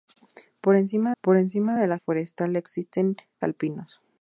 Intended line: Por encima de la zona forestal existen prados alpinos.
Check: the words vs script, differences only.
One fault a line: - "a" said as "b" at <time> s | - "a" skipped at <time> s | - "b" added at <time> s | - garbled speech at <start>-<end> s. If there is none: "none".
- "por encima" added at 1.2 s
- "zona" skipped at 2.0 s
- "prados" skipped at 3.2 s